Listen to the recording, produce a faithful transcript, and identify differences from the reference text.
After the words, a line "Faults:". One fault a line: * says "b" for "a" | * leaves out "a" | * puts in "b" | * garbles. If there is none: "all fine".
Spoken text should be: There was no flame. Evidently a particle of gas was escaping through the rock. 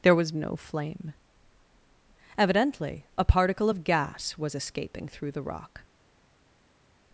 There was no flame. Evidently a particle of gas was escaping through the rock.
Faults:
all fine